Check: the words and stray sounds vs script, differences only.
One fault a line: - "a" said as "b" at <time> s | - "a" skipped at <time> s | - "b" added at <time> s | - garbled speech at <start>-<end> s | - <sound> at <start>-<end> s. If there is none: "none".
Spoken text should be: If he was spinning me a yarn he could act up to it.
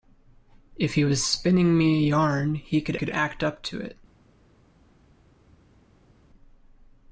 - "could" added at 2.9 s